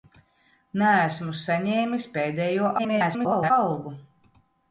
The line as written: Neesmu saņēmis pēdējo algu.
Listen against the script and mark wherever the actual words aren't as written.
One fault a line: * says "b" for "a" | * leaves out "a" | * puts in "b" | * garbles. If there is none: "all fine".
* garbles